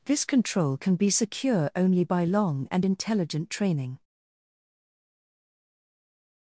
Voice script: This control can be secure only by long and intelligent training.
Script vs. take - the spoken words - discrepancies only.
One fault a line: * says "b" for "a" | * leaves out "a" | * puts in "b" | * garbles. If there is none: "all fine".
all fine